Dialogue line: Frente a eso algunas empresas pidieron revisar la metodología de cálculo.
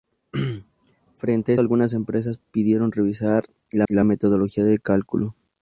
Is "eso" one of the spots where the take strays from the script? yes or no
yes